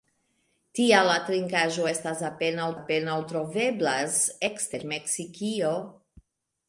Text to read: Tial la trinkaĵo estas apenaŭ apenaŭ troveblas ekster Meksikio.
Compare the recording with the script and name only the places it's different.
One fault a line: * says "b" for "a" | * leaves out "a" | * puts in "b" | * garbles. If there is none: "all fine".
all fine